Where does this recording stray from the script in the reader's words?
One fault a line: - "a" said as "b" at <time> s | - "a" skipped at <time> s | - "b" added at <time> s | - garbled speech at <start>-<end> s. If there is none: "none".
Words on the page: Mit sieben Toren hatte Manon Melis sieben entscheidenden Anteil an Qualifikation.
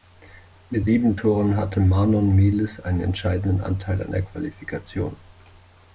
- "sieben" said as "einen" at 2.8 s
- "der" added at 4.1 s